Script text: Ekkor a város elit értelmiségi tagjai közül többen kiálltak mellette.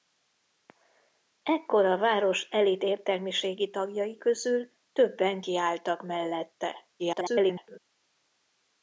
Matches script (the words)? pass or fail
fail